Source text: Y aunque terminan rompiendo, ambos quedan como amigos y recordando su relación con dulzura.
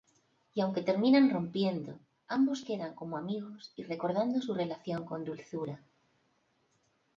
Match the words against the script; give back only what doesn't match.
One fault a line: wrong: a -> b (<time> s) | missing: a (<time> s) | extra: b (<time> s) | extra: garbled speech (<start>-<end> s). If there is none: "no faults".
no faults